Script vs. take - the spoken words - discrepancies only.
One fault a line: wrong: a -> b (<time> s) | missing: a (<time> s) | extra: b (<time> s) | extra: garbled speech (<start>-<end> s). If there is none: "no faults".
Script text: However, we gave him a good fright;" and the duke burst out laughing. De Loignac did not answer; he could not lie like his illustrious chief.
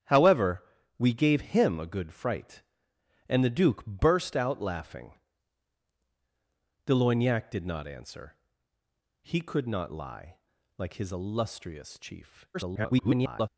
extra: garbled speech (12.5-13.5 s)